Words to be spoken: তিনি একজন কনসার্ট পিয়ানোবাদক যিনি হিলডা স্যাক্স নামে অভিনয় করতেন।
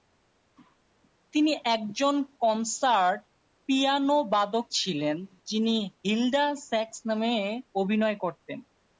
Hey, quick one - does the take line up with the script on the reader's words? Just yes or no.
no